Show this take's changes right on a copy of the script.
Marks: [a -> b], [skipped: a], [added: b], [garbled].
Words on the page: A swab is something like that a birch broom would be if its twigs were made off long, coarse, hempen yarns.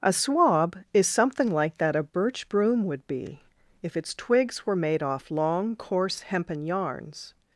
A swab is something like that a birch broom would be if its twigs were made off long, coarse, hempen yarns.